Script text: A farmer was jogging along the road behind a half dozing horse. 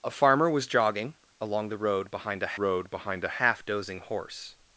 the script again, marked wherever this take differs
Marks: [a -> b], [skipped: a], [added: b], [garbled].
A farmer was jogging along the road behind a [added: road behind a] half dozing horse.